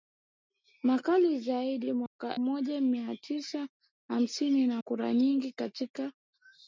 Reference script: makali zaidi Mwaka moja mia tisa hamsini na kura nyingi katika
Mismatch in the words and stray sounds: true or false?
true